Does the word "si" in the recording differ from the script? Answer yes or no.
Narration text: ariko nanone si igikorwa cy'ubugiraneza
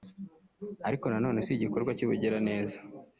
no